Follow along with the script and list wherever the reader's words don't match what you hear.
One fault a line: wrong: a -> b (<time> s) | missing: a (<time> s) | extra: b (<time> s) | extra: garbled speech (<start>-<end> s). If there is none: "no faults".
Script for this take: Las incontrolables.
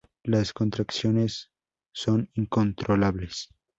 extra: contracciones son (0.5 s)